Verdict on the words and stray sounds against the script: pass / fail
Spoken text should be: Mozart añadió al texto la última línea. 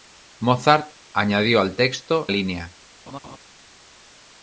fail